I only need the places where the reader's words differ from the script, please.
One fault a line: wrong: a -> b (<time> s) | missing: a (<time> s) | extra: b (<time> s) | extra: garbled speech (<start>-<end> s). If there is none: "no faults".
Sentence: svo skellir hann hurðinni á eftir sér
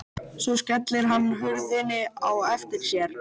no faults